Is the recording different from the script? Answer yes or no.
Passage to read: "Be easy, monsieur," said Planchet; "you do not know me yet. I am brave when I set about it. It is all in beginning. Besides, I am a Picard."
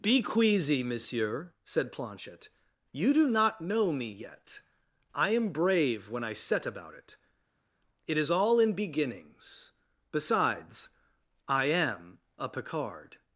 yes